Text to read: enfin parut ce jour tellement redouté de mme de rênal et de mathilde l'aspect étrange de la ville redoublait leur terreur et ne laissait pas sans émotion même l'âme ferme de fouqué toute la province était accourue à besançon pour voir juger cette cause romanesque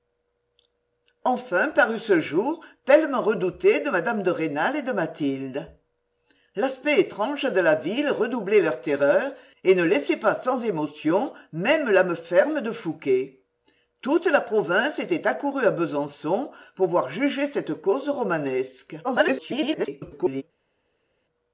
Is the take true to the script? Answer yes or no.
no